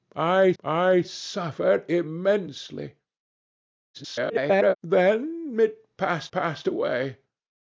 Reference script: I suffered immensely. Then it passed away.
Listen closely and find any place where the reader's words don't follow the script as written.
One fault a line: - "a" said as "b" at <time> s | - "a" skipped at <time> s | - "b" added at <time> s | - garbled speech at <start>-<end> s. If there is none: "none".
- "I" added at 0.6 s
- garbled speech at 3.9-4.8 s
- "passed" added at 6.3 s